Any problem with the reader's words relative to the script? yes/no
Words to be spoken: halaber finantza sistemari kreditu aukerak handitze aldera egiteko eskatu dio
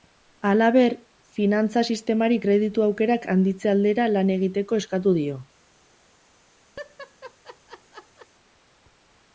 yes